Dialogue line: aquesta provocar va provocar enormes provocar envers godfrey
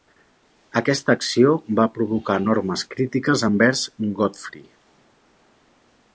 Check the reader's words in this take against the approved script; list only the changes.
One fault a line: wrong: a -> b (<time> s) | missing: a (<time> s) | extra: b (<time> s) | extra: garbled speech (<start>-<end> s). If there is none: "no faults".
wrong: provocar -> acció (1.2 s)
wrong: provocar -> crítiques (3.0 s)